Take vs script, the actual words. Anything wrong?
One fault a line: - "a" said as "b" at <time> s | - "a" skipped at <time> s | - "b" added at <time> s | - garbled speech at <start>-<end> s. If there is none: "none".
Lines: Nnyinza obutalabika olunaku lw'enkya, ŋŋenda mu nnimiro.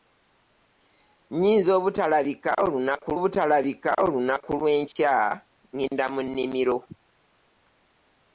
- "obutalabika olunaku" added at 3.2 s